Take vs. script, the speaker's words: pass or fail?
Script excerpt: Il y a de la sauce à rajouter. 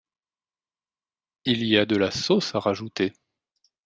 pass